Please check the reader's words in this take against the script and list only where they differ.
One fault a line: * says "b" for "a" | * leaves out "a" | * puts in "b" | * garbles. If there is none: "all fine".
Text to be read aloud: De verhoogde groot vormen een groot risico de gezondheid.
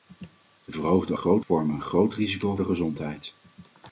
all fine